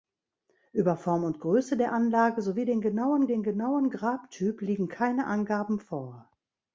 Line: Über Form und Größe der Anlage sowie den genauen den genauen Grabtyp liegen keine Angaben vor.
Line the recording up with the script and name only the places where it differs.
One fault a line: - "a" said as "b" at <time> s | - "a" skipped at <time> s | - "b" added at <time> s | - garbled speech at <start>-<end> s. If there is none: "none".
none